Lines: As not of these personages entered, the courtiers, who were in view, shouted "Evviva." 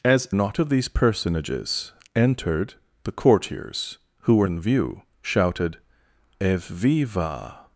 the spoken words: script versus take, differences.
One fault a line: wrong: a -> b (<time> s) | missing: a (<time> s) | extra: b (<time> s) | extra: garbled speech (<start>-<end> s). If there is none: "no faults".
no faults